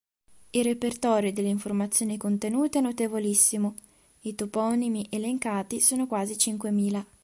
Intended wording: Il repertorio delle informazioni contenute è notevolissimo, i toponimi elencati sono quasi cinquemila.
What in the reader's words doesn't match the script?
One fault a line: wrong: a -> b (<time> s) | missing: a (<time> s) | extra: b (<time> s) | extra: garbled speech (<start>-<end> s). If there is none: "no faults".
no faults